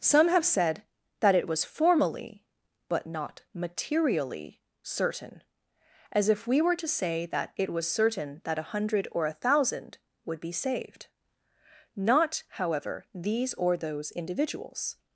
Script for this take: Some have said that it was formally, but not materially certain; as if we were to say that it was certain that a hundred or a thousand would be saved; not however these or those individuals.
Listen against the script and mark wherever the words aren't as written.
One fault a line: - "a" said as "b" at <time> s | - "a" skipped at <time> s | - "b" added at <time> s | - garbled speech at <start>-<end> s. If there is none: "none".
none